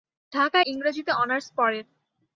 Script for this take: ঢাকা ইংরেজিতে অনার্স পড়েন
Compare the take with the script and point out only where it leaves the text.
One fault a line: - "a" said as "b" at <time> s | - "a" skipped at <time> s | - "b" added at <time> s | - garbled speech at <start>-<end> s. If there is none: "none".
none